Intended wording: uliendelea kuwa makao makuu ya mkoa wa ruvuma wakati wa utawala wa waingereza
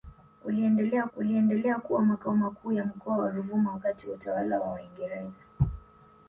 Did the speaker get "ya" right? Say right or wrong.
right